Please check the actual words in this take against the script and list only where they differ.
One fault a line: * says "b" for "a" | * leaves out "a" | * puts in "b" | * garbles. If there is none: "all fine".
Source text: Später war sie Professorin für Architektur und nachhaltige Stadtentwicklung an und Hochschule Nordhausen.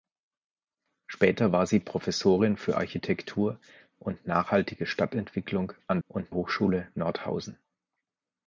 all fine